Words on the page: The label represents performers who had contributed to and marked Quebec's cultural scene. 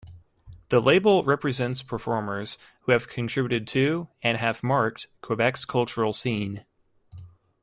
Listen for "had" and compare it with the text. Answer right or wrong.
wrong